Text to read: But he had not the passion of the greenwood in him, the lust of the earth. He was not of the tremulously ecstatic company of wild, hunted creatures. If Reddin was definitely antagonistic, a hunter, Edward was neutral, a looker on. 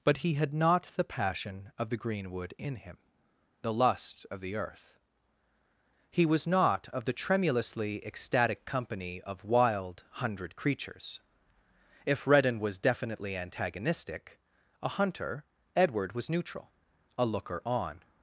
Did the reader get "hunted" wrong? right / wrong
wrong